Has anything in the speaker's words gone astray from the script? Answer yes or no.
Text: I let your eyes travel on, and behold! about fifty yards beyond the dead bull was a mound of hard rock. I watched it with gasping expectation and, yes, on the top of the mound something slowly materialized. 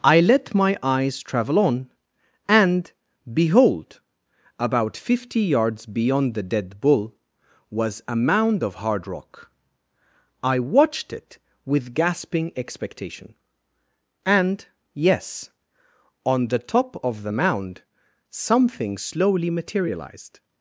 yes